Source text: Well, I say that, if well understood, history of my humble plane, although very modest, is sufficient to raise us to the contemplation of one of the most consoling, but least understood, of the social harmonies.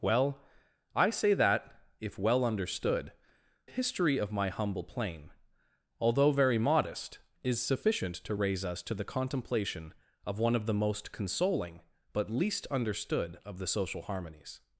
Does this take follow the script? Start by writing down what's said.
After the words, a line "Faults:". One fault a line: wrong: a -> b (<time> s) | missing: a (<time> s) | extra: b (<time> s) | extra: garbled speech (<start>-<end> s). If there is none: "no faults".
Well, I say that, if well understood, history of my humble plane, although very modest, is sufficient to raise us to the contemplation of one of the most consoling, but least understood, of the social harmonies.
Faults:
no faults